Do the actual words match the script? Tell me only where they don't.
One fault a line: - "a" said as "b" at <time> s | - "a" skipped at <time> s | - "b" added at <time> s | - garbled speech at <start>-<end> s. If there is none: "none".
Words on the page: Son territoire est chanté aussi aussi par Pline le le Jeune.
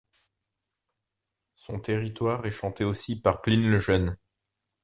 - "aussi" skipped at 3.1 s
- "le" skipped at 3.8 s